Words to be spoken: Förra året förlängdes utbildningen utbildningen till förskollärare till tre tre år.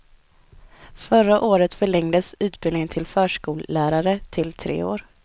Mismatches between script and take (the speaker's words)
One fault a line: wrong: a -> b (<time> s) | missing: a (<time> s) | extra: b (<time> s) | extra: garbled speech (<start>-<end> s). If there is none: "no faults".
missing: utbildningen (2.9 s)
missing: tre (4.8 s)